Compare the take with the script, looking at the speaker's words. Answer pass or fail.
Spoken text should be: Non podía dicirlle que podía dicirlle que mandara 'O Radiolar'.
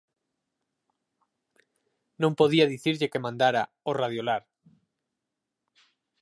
fail